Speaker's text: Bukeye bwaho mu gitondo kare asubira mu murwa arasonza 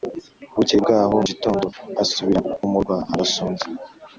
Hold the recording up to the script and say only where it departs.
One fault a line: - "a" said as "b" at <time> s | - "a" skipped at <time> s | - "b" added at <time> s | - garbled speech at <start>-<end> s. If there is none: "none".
- "kare" skipped at 1.6 s